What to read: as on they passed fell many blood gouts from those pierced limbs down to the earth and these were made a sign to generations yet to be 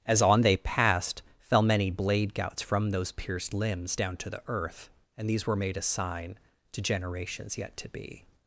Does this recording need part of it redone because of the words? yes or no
yes